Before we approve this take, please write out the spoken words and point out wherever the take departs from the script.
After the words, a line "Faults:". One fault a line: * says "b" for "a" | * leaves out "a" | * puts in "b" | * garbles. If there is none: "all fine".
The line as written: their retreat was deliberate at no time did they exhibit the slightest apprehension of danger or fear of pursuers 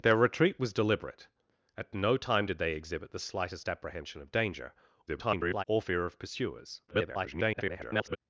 their retreat was deliberate at no time did they exhibit the slightest apprehension of danger [garbled] or fear of pursuers [garbled]
Faults:
* garbles
* garbles